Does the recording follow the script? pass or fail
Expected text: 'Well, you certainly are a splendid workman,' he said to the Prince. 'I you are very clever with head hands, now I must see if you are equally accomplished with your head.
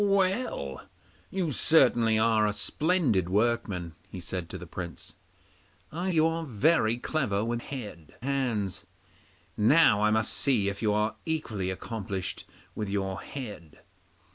pass